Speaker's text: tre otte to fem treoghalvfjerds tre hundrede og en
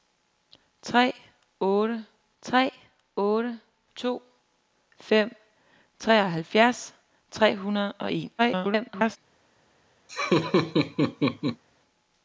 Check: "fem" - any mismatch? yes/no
no